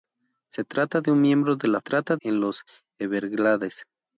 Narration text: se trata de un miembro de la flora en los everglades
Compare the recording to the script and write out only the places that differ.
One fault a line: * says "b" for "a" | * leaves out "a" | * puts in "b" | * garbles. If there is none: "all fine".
* says "trata" for "flora"